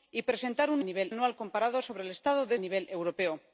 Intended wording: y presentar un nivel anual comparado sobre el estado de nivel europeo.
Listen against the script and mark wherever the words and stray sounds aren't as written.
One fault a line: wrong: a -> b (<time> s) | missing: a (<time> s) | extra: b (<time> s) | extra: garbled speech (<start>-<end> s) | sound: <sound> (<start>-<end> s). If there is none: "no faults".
no faults